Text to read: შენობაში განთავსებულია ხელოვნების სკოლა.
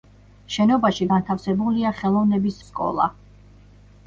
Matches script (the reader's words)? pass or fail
pass